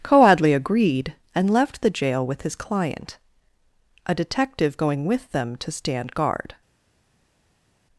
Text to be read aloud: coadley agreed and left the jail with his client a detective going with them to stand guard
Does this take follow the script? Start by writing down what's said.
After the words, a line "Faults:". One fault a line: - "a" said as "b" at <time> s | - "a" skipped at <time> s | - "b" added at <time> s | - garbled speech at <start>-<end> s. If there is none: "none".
coadley agreed and left the jail with his client a detective going with them to stand guard
Faults:
none